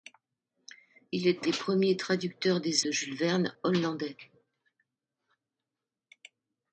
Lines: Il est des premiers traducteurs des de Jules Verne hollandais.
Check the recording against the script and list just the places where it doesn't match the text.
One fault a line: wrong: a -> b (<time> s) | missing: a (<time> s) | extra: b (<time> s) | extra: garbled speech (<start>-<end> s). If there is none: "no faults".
no faults